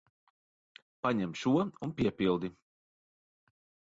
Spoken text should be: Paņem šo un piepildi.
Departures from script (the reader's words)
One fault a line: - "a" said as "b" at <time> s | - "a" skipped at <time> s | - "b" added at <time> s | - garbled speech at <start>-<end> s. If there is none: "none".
none